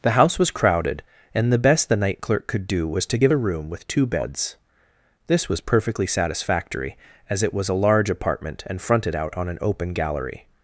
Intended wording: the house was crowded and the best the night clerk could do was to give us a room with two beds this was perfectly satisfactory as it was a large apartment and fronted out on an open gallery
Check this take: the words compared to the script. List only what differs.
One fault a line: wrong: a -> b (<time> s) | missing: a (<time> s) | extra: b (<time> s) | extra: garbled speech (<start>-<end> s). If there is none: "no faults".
missing: us (3.3 s)